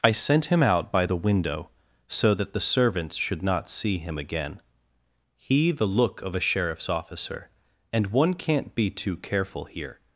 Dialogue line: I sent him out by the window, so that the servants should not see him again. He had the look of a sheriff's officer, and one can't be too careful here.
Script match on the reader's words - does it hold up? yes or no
no